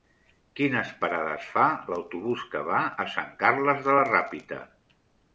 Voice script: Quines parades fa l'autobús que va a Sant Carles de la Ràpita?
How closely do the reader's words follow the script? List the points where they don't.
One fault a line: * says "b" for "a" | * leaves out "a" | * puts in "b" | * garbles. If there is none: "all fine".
all fine